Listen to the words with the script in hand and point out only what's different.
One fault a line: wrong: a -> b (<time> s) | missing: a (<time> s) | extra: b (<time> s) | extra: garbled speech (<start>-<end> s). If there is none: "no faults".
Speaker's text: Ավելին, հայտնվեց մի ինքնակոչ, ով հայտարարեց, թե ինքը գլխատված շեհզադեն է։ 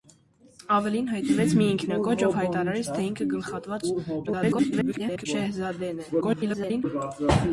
extra: garbled speech (4.3-5.3 s)
extra: garbled speech (6.2-6.8 s)